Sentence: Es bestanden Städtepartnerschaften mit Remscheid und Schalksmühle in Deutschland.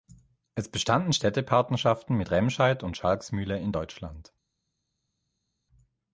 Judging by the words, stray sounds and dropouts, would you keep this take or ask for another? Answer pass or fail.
pass